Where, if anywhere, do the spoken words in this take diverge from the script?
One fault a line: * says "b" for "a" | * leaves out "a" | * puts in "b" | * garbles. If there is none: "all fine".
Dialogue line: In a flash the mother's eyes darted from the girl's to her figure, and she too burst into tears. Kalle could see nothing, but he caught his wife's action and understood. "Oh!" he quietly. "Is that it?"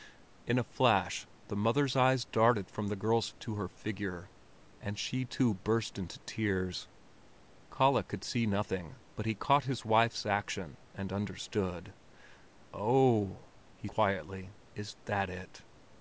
all fine